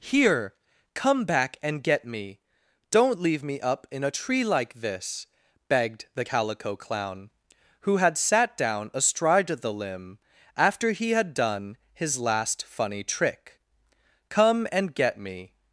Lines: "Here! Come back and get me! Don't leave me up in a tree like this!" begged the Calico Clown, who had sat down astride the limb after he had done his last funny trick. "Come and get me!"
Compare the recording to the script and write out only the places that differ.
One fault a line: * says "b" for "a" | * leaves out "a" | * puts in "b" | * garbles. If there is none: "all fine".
all fine